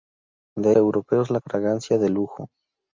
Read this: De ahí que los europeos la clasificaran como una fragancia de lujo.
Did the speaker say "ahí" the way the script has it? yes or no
no